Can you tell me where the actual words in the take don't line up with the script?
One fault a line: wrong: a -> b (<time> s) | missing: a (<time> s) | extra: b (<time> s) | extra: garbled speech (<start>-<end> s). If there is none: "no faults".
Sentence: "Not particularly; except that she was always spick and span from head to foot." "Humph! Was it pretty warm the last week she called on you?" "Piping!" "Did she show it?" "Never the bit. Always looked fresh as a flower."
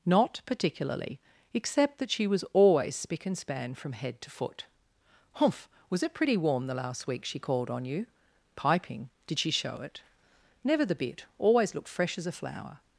no faults